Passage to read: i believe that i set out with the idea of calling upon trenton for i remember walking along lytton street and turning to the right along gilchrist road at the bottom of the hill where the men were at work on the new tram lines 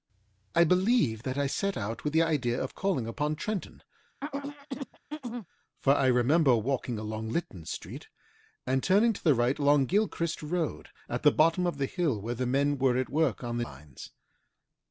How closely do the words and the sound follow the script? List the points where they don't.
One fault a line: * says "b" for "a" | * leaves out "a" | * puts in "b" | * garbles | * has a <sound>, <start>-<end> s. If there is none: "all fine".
* has a throat clearing, 4.2-5.5 s
* leaves out "new tram"